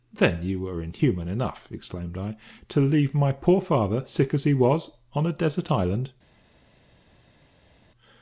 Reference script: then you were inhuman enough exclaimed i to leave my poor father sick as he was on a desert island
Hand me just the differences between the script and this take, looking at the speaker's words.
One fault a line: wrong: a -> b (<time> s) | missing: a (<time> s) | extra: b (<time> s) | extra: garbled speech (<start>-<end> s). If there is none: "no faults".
no faults